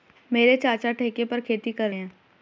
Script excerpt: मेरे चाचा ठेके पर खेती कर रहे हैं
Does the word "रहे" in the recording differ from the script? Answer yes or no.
yes